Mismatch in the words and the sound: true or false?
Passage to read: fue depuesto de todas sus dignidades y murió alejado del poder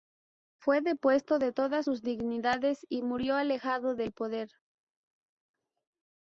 false